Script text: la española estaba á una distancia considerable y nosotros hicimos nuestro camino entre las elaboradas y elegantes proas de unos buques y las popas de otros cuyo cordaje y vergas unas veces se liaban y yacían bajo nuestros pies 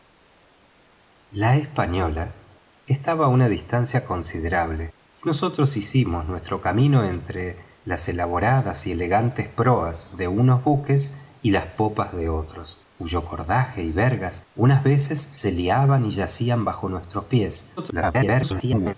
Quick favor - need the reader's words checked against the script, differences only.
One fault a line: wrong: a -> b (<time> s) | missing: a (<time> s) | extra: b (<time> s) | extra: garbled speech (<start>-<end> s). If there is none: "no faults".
extra: garbled speech (17.8-18.9 s)